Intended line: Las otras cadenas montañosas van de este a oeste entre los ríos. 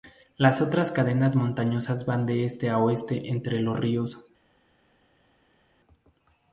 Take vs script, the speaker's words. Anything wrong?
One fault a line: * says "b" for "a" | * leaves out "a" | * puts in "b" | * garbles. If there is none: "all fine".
all fine